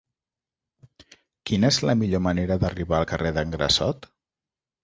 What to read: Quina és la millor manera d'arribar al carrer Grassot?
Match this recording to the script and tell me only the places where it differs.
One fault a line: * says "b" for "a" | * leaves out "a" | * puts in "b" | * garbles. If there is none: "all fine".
* puts in "d'en"